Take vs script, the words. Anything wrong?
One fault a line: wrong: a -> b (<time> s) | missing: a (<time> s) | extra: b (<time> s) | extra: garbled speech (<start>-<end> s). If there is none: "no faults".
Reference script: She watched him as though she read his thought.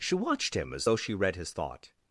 no faults